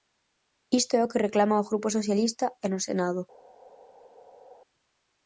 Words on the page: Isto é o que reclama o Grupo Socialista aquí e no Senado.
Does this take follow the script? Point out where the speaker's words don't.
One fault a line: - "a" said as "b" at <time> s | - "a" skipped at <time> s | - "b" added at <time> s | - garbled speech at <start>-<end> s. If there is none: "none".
- "aquí" skipped at 2.5 s